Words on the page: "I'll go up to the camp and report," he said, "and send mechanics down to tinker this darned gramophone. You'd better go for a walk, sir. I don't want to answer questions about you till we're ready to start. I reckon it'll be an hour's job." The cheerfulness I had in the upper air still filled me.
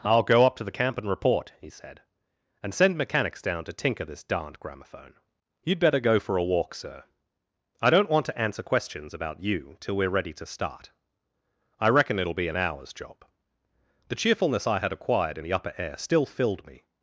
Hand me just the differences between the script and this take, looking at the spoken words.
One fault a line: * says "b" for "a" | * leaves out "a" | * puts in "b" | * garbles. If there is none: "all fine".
* puts in "acquired"